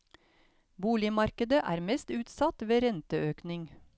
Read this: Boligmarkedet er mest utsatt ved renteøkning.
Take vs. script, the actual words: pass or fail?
pass